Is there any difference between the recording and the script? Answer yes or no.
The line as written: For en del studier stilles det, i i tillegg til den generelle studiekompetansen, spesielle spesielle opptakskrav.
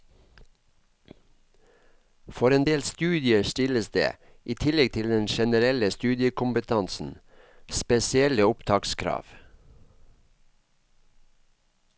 yes